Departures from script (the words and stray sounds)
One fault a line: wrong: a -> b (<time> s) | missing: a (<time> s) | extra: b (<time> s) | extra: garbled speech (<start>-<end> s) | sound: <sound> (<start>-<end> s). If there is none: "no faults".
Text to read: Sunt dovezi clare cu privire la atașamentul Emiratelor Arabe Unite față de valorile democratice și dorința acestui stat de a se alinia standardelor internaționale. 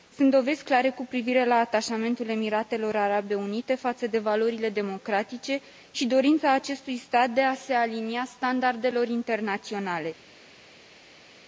no faults